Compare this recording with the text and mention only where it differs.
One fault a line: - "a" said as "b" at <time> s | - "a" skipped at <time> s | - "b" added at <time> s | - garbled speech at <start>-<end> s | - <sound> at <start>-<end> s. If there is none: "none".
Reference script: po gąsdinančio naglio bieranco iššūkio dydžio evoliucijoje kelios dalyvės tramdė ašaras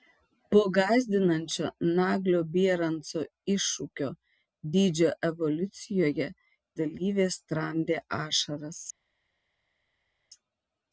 - "kelios" skipped at 6.3 s